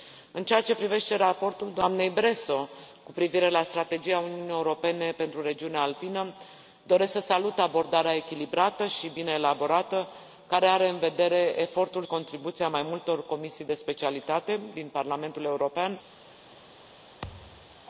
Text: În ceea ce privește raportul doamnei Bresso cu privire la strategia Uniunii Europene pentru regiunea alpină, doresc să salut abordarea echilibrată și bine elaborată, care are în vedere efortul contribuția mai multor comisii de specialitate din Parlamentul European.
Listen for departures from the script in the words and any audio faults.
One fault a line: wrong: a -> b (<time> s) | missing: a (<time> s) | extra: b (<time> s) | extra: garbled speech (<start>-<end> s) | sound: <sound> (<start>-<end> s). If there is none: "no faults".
sound: thud (17.2-17.9 s)